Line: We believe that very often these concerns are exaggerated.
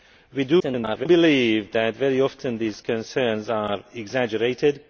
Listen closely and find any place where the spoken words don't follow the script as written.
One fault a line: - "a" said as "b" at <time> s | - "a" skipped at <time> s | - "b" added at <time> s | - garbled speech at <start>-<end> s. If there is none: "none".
- garbled speech at 0.6-1.1 s